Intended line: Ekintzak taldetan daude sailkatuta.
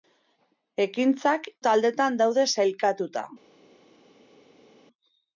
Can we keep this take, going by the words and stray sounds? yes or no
yes